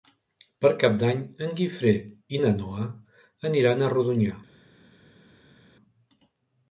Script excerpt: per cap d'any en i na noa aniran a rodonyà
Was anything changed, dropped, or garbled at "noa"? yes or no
no